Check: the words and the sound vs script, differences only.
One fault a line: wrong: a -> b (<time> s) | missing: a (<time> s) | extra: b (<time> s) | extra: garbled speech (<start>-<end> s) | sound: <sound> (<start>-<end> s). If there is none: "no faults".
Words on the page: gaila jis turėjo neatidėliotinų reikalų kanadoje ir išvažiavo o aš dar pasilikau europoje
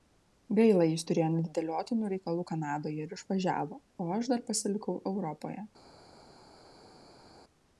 no faults